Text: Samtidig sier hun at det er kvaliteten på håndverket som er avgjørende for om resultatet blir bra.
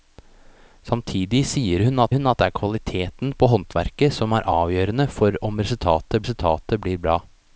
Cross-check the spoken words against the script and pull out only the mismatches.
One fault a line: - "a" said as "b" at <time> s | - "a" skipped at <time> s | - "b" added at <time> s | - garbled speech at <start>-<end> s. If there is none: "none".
- "hun at" added at 2.2 s
- "resultatet" added at 6.2 s